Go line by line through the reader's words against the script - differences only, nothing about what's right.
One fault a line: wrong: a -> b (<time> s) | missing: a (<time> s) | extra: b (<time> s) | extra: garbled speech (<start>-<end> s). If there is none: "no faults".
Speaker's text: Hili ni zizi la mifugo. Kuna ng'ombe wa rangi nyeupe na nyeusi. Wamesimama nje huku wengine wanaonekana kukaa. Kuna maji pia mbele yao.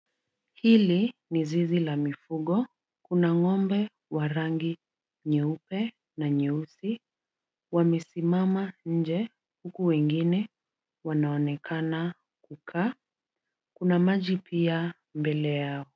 no faults